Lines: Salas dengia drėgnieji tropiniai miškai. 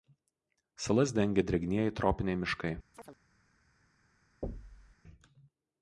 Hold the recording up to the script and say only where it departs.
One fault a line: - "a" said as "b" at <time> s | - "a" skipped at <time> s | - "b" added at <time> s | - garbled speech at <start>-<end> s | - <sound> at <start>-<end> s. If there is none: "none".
- chirp at 2.9-3.2 s
- thud at 4.4-5.0 s